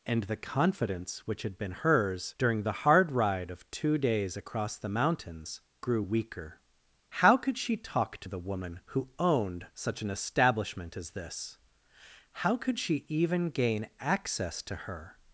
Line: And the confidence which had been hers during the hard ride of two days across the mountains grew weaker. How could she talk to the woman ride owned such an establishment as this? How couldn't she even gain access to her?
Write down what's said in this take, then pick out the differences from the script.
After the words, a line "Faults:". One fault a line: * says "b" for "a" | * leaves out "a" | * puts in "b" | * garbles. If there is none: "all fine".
And the confidence which had been hers during the hard ride of two days across the mountains grew weaker. How could she talk to the woman who owned such an establishment as this? How could she even gain access to her?
Faults:
* says "who" for "ride"
* says "could" for "couldn't"